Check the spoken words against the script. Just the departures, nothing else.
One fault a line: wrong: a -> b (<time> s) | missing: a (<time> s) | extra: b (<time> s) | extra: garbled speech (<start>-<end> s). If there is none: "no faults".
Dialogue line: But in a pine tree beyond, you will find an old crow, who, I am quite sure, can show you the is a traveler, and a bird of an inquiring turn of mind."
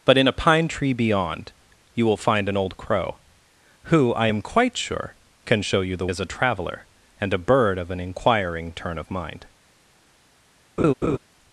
no faults